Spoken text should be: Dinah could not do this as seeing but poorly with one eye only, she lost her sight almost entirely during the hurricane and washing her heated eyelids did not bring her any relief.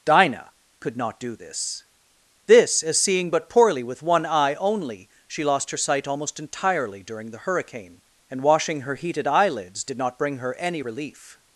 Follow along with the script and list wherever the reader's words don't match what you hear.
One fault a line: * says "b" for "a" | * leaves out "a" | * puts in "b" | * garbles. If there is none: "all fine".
* puts in "this"